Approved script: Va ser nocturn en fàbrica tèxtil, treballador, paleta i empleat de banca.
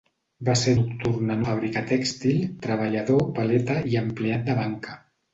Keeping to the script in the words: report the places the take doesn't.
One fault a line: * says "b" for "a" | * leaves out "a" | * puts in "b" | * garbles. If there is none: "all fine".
all fine